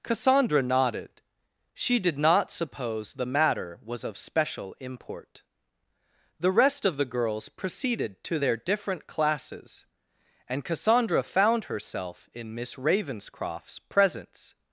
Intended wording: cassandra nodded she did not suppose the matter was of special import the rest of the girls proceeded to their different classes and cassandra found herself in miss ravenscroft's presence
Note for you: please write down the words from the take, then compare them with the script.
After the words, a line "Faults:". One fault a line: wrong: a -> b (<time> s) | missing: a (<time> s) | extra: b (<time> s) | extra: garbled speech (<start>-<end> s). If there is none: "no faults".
cassandra nodded she did not suppose the matter was of special import the rest of the girls proceeded to their different classes and cassandra found herself in miss ravenscroft's presence
Faults:
no faults